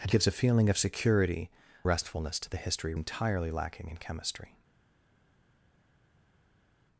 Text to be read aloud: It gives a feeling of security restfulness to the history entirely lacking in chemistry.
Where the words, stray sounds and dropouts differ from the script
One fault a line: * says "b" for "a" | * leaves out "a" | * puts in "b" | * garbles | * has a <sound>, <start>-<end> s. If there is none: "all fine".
all fine